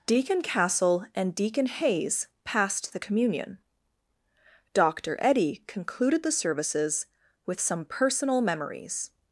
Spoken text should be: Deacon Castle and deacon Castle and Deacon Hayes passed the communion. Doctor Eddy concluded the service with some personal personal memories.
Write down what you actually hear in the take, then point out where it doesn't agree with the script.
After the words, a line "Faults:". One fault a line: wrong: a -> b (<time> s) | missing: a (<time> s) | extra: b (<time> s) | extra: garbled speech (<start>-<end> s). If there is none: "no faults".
Deacon Castle and Deacon Hayes passed the communion. Doctor Eddy concluded the services with some personal memories.
Faults:
missing: Castle and Deacon (1.7 s)
wrong: service -> services (6.3 s)
missing: personal (8.4 s)